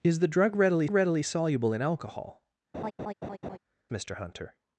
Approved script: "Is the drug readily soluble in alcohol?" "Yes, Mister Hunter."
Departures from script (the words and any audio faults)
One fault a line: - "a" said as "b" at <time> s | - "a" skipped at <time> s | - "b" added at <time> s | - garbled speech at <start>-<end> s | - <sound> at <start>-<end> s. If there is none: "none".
- "readily" added at 0.9 s
- "Yes" skipped at 2.4 s
- laugh at 2.7-3.6 s